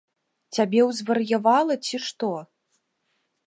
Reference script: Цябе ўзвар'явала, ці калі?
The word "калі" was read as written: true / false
false